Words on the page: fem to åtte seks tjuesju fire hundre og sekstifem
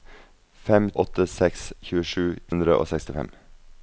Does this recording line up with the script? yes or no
no